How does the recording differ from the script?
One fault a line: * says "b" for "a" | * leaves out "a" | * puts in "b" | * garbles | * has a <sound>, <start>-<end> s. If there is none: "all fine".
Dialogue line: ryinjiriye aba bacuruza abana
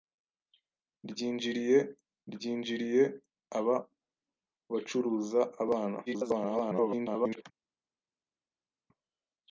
* puts in "ryinjiriye"
* garbles